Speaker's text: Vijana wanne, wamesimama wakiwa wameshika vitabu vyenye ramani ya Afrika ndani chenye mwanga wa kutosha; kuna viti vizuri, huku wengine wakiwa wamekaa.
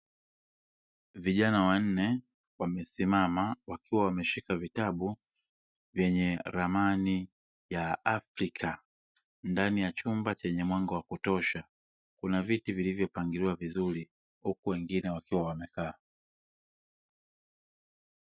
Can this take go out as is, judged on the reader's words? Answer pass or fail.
fail